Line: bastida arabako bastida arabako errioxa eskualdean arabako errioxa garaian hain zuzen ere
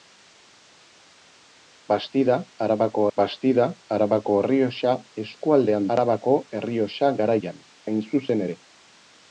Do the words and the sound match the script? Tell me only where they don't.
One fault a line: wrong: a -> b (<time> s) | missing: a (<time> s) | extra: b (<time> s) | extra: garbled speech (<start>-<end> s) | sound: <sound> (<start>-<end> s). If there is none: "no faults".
no faults